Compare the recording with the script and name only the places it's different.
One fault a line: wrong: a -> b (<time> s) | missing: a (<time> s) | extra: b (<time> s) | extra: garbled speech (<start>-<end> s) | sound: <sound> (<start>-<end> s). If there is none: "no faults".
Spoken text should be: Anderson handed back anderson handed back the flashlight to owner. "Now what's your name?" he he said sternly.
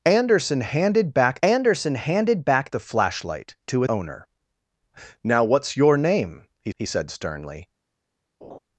sound: laugh (8.4-8.6 s)